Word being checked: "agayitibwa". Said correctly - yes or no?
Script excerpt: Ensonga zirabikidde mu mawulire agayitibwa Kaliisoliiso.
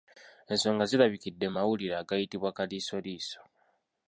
yes